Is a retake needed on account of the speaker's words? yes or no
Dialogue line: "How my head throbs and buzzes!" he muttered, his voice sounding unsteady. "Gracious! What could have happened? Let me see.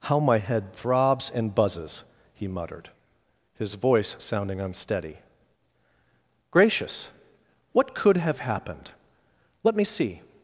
no